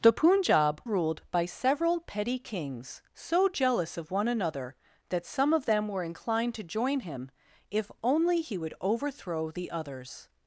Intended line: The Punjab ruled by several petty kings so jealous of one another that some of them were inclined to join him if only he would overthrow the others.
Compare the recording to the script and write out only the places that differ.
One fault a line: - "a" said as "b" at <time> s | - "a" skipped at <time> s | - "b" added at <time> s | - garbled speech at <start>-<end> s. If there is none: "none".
none